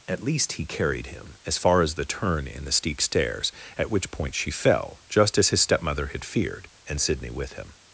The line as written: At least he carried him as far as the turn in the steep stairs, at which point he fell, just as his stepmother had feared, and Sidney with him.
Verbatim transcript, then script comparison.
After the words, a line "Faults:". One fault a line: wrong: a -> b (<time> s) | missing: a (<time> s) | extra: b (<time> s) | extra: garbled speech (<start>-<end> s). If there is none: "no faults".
At least he carried him as far as the turn in the steep stairs, at which point she fell, just as his stepmother had feared, and Sidney with him.
Faults:
wrong: he -> she (4.3 s)